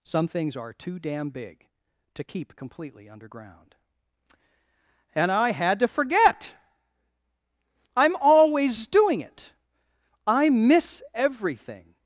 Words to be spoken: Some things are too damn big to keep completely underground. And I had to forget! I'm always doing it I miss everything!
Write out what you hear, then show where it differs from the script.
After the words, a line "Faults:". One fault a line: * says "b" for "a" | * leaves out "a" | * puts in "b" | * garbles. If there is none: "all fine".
Some things are too damn big to keep completely underground. And I had to forget! I'm always doing it I miss everything!
Faults:
all fine